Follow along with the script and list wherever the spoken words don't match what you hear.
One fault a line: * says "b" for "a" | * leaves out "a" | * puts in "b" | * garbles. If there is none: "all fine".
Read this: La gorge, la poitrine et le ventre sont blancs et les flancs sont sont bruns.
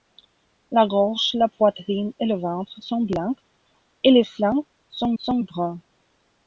all fine